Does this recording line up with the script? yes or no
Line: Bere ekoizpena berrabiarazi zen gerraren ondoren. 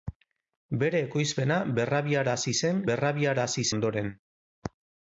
no